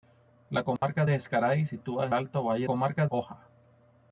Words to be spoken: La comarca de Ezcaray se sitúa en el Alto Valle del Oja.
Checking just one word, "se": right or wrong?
wrong